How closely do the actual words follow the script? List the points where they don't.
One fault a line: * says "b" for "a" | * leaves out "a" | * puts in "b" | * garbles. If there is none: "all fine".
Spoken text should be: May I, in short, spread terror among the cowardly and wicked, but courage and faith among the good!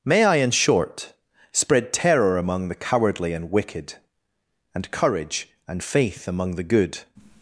* says "and" for "but"